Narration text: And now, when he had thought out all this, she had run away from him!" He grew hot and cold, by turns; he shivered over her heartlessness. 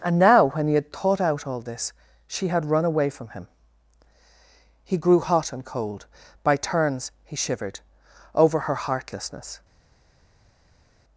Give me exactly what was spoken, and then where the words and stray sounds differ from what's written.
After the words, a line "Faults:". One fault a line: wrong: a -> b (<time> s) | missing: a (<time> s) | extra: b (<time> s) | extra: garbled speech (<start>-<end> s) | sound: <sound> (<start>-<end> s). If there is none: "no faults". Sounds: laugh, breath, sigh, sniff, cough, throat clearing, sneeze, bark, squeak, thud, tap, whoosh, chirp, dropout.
And now, when he had thought out all this, she had run away from him!" He grew hot and cold, by turns; he shivered over her heartlessness.
Faults:
no faults